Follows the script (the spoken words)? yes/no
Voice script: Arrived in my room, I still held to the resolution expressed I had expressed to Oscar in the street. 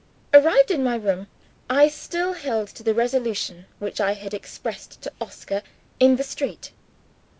no